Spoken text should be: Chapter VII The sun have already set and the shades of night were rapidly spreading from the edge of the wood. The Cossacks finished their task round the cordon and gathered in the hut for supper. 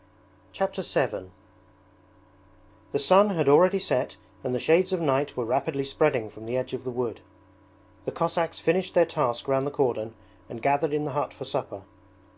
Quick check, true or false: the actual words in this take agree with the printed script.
false